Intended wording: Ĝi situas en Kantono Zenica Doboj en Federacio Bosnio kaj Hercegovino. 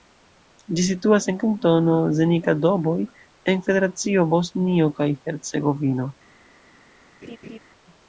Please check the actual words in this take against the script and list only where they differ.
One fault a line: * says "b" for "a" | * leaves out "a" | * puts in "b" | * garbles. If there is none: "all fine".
all fine